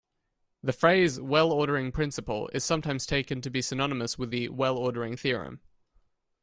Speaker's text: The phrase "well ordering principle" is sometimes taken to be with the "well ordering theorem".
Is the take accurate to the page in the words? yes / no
no